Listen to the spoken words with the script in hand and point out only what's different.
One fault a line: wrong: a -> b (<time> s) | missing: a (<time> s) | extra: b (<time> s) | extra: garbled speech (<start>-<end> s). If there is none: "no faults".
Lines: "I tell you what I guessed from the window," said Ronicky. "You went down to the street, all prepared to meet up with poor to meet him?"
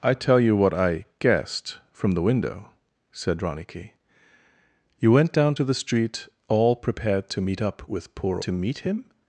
no faults